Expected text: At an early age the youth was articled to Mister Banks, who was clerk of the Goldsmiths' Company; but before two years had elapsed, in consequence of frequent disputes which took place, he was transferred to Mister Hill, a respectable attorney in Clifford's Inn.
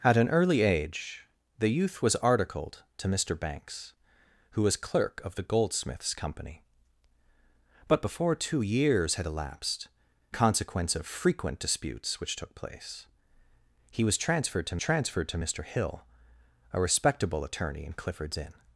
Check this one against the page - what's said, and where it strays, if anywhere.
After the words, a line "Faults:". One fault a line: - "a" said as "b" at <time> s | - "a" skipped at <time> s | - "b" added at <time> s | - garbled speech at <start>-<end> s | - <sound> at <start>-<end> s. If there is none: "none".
At an early age the youth was articled to Mister Banks, who was clerk of the Goldsmiths' Company; but before two years had elapsed, consequence of frequent disputes which took place, he was transferred to transferred to Mister Hill, a respectable attorney in Clifford's Inn.
Faults:
- "in" skipped at 9.9 s
- "transferred to" added at 14.8 s